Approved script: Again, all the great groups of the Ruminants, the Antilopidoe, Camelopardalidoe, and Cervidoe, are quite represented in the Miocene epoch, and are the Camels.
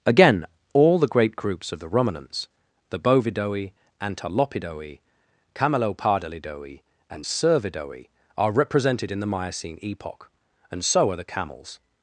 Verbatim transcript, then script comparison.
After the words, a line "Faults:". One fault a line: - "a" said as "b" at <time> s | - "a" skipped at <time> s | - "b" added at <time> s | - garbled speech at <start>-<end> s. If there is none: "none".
Again, all the great groups of the Ruminants, the Bovidoe, Antilopidoe, Camelopardalidoe, and Cervidoe, are represented in the Miocene epoch, and so are the Camels.
Faults:
- "Bovidoe" added at 3.0 s
- "quite" skipped at 8.5 s
- "so" added at 10.8 s